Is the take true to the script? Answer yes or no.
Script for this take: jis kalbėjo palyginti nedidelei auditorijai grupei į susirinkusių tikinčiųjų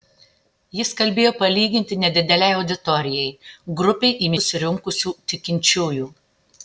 yes